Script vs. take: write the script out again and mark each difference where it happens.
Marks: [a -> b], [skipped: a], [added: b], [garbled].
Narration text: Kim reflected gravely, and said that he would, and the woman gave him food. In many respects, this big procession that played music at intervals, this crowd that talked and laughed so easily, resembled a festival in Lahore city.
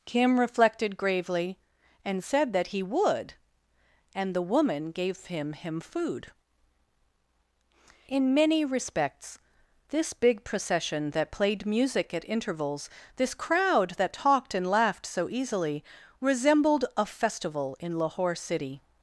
Kim reflected gravely, and said that he would, and the woman gave him [added: him] food. In many respects, this big procession that played music at intervals, this crowd that talked and laughed so easily, resembled a festival in Lahore city.